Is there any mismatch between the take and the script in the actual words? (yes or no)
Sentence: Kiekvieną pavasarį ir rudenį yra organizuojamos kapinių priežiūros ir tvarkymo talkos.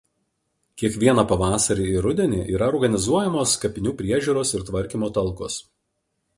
no